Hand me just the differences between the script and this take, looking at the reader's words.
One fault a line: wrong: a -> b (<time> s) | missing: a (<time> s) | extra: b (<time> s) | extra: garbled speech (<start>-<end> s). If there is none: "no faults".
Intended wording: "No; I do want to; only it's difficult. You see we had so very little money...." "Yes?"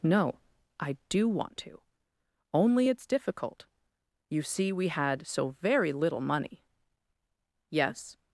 no faults